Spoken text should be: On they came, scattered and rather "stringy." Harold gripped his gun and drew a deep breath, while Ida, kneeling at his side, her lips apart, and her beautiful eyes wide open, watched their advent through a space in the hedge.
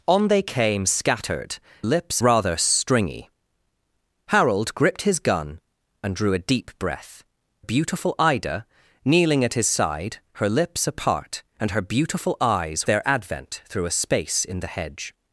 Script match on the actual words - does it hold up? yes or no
no